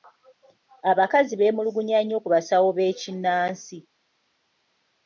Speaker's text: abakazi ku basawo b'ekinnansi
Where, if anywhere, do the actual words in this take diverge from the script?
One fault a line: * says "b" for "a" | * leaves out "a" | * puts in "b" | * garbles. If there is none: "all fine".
* puts in "beemulugunya nnyo"